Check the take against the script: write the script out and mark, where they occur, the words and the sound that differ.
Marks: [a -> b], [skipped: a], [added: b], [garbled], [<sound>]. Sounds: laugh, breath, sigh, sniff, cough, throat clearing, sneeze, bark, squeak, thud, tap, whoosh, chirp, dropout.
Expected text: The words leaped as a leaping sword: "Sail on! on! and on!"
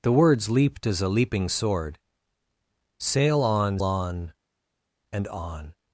The words leaped as a leaping sword: "Sail on! on! and on!"